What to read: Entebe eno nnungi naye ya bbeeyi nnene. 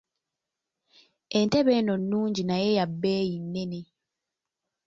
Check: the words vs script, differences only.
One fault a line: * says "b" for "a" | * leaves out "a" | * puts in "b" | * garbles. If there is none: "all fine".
all fine